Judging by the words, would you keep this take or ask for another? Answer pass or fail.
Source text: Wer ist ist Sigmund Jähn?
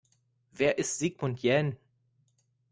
fail